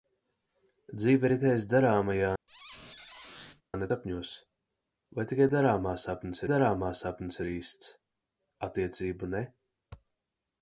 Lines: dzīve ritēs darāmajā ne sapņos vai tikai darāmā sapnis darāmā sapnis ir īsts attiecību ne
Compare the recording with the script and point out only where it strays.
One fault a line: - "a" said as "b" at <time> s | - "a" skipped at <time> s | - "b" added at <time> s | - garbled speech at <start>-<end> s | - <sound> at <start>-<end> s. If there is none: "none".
- squeak at 2.5-3.6 s